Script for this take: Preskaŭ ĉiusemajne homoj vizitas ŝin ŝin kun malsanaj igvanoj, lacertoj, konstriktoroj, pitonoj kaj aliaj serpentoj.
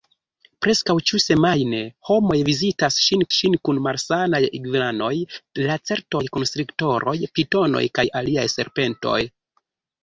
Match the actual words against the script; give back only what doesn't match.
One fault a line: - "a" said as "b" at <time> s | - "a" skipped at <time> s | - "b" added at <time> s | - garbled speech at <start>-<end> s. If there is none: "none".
none